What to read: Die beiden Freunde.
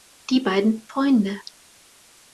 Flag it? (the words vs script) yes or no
no